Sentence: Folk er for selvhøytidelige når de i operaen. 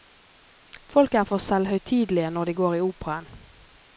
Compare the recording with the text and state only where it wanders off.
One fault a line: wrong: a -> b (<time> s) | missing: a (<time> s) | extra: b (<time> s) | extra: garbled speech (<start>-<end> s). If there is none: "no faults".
extra: går (2.5 s)